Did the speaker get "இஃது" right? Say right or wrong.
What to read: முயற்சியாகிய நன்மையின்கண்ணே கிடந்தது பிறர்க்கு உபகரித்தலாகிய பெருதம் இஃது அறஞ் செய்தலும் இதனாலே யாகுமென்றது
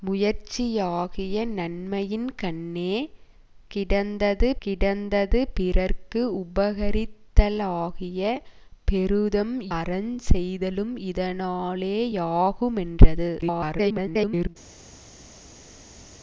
wrong